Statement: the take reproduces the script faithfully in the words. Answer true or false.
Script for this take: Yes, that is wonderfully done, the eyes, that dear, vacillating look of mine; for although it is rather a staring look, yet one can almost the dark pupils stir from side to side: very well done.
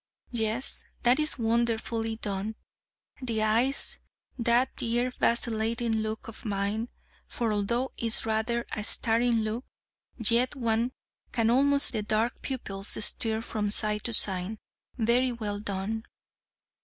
true